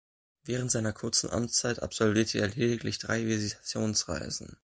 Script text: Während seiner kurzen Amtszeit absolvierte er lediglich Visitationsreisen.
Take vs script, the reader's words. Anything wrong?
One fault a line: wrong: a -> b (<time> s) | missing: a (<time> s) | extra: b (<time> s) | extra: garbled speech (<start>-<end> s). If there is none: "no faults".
extra: drei (3.0 s)